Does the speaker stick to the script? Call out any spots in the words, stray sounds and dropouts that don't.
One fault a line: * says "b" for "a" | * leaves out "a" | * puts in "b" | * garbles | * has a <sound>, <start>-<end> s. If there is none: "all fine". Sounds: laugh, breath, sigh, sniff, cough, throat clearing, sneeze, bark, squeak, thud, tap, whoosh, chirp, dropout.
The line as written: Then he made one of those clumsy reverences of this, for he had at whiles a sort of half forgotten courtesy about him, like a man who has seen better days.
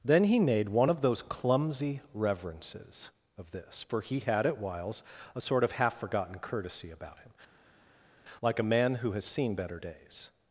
all fine